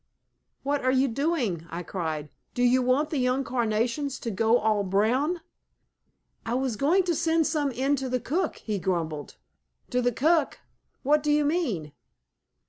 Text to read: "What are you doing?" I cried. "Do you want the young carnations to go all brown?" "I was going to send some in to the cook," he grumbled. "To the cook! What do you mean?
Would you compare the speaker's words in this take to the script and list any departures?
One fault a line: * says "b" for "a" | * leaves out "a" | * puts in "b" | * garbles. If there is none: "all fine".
all fine